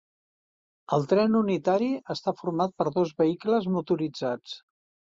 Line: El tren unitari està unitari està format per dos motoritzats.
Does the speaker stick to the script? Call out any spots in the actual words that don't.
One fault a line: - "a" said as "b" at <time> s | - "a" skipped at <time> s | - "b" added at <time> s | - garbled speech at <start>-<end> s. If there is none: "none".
- "unitari està" skipped at 2.4 s
- "vehicles" added at 3.2 s